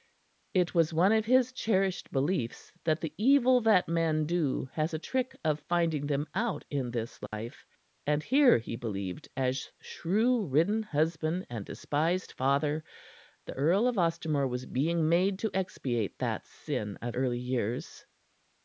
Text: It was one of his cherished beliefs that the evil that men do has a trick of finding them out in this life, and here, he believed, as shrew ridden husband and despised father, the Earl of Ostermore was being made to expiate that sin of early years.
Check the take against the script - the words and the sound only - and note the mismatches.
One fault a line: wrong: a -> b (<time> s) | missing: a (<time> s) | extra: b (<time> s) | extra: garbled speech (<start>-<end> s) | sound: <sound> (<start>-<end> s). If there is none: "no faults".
sound: dropout (7.3-7.3 s)